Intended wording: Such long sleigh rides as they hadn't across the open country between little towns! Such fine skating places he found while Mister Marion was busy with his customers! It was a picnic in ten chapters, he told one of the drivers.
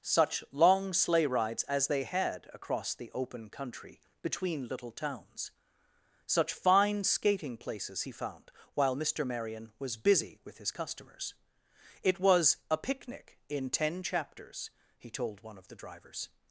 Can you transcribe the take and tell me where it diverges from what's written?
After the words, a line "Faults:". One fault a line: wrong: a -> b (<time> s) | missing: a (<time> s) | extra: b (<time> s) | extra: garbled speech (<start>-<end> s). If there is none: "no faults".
Such long sleigh rides as they had across the open country between little towns! Such fine skating places he found while Mister Marion was busy with his customers! It was a picnic in ten chapters, he told one of the drivers.
Faults:
wrong: hadn't -> had (2.0 s)